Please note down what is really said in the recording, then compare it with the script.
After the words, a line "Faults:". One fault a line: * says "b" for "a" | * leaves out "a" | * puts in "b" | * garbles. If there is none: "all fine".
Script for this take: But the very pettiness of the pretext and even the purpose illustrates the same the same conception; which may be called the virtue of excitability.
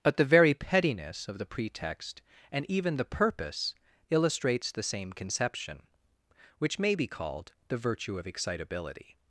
But the very pettiness of the pretext and even the purpose illustrates the same conception; which may be called the virtue of excitability.
Faults:
* leaves out "the same"